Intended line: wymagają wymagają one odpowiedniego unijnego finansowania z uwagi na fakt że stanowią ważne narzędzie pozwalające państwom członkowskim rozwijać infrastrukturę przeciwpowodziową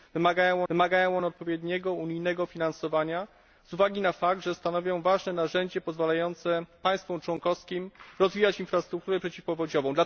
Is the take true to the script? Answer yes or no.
yes